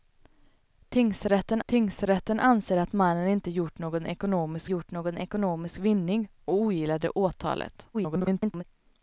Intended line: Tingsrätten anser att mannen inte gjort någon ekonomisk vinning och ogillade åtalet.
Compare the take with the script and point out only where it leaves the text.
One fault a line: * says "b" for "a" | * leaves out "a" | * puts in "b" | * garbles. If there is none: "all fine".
* puts in "tingsrätten"
* puts in "gjort någon ekonomisk"
* garbles